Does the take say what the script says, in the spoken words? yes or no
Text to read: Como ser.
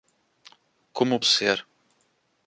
yes